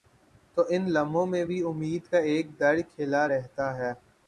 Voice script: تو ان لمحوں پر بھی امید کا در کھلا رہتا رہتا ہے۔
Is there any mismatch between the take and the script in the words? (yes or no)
yes